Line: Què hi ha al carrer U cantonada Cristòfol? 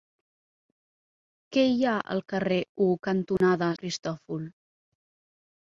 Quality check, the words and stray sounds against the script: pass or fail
fail